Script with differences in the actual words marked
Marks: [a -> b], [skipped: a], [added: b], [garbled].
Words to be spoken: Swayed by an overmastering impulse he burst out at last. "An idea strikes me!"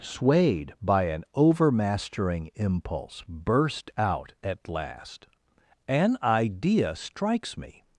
Swayed by an overmastering impulse [skipped: he] burst out at last. "An idea strikes me!"